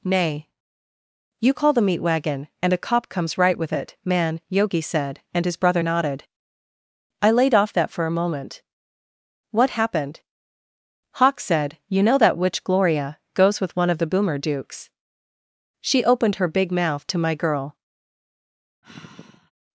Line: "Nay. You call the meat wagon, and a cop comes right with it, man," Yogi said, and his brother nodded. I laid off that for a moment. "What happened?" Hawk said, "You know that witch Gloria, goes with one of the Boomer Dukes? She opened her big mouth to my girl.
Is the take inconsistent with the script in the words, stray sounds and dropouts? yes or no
yes